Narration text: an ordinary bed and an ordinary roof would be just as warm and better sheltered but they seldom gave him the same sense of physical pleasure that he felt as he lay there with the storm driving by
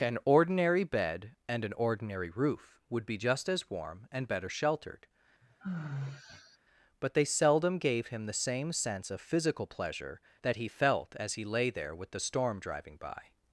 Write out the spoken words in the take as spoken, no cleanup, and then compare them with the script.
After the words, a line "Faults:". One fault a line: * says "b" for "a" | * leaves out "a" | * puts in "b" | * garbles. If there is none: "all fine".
an ordinary bed and an ordinary roof would be just as warm and better sheltered but they seldom gave him the same sense of physical pleasure that he felt as he lay there with the storm driving by
Faults:
all fine